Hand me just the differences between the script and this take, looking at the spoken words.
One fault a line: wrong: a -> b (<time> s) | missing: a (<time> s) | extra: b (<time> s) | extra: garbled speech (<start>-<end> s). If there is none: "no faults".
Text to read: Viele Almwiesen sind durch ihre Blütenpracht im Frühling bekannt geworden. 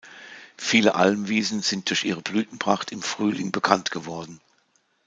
no faults